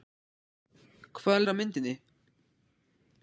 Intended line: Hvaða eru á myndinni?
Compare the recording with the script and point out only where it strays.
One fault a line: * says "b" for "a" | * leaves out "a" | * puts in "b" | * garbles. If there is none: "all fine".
all fine